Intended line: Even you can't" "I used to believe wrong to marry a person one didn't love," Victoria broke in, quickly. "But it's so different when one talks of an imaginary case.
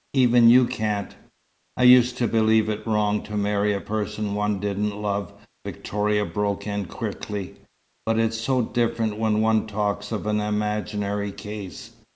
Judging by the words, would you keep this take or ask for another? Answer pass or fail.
fail